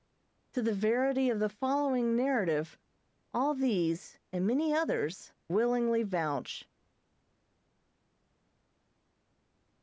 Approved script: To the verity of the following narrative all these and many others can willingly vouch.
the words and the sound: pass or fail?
fail